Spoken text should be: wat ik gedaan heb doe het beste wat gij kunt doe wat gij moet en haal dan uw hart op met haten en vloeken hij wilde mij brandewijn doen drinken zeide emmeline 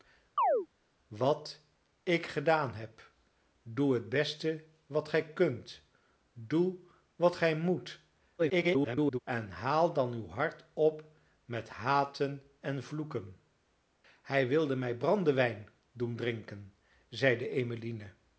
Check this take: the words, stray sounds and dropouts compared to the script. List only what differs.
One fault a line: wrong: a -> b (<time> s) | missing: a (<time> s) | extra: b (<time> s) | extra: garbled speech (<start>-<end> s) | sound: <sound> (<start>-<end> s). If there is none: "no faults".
sound: chirp (0.4-0.7 s)
extra: garbled speech (8.4-9.2 s)